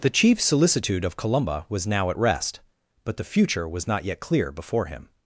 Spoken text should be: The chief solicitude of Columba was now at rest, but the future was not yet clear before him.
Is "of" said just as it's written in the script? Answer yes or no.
yes